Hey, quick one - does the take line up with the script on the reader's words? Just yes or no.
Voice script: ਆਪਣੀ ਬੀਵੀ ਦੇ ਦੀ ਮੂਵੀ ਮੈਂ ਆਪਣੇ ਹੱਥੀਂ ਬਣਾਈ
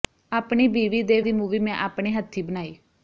yes